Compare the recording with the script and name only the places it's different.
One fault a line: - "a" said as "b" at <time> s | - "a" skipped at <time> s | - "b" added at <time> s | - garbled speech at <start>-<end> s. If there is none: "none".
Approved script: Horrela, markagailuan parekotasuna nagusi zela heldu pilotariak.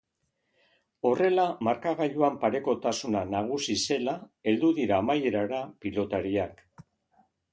- "dira amaierara" added at 4.8 s